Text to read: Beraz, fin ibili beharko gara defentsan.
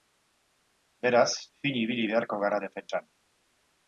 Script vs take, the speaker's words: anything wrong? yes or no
no